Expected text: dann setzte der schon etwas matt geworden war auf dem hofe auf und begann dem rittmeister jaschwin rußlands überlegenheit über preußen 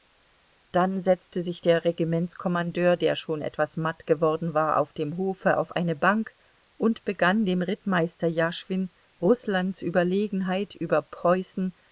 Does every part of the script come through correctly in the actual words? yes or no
no